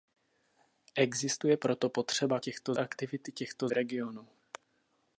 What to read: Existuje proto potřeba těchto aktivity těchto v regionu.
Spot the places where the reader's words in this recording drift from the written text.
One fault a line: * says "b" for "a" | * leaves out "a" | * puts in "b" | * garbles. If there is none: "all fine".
all fine